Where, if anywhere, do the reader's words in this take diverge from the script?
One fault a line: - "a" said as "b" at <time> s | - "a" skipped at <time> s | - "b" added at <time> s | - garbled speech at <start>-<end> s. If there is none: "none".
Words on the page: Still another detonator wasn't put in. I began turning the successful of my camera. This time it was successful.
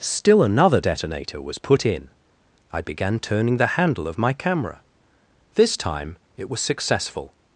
- "wasn't" said as "was" at 1.4 s
- "successful" said as "handle" at 3.8 s